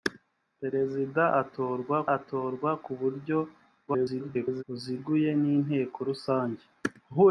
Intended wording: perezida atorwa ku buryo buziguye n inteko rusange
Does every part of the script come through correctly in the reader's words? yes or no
no